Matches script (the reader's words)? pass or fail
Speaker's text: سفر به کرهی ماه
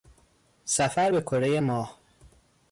pass